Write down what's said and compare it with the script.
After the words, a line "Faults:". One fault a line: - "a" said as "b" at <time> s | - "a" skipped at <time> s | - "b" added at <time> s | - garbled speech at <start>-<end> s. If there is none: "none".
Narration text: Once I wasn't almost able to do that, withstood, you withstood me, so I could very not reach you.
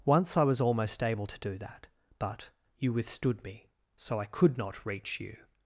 Once I was almost able to do that, but, you withstood me, so I could not reach you.
Faults:
- "wasn't" said as "was" at 0.4 s
- "withstood" said as "but" at 2.2 s
- "very" skipped at 4.6 s